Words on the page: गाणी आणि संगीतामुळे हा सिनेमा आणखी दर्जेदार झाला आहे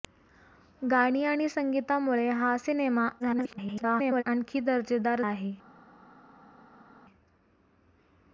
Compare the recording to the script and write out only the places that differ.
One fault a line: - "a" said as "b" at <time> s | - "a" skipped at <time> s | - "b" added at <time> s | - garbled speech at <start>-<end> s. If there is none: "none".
- garbled speech at 3.2-4.2 s
- "झाला" skipped at 5.2 s